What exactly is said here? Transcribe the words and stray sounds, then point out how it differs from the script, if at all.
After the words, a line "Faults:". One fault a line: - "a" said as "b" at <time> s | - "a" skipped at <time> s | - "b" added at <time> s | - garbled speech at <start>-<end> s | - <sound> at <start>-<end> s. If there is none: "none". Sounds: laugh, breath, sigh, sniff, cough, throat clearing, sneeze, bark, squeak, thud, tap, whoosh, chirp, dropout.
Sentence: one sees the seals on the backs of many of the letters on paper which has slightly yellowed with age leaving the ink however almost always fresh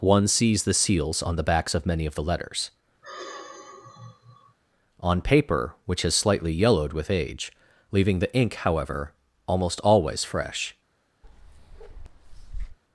one sees the seals on the backs of many of the letters on paper which has slightly yellowed with age leaving the ink however almost always fresh
Faults:
- sigh at 3.0-4.6 s
- bark at 11.2-12.8 s